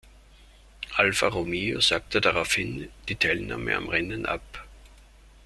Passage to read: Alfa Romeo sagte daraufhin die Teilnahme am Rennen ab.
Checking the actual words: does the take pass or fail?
pass